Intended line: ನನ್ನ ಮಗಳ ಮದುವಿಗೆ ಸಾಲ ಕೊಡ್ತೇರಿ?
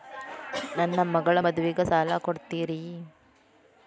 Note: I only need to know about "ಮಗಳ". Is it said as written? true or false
true